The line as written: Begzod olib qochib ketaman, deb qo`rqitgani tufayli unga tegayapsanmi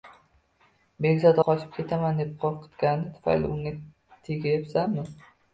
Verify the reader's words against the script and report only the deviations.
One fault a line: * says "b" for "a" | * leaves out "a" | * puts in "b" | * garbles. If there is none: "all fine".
* leaves out "olib"